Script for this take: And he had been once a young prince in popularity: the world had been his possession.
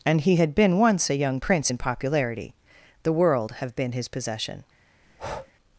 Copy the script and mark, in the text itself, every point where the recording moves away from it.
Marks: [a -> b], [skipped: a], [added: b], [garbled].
And he had been once a young prince in popularity: the world [had -> have] been his possession.